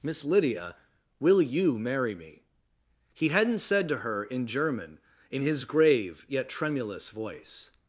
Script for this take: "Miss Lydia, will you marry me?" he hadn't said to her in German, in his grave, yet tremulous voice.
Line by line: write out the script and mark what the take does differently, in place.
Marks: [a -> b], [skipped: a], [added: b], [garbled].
"Miss Lydia, will you marry me?" he hadn't said to her in German, in his grave, yet tremulous voice.